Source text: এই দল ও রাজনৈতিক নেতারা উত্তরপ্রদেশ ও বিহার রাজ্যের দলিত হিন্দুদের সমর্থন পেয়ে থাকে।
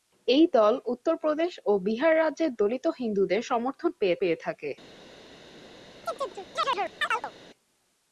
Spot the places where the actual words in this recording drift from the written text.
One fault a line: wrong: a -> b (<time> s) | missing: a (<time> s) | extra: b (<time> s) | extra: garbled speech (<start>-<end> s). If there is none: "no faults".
missing: ও রাজনৈতিক নেতারা (0.7 s)
extra: পেয়ে (4.2 s)